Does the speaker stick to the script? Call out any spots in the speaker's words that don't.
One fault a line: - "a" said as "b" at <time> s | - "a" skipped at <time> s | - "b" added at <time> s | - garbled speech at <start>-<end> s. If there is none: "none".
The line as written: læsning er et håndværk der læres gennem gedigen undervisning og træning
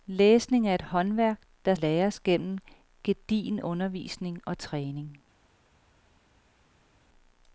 none